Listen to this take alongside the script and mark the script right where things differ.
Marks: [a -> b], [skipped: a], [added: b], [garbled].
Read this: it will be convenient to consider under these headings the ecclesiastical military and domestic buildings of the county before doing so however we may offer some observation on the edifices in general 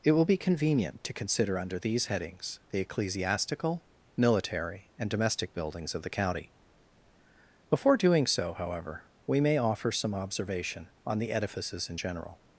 it will be convenient to consider under these headings the ecclesiastical military and domestic buildings of the county before doing so however we may offer some observation on the edifices in general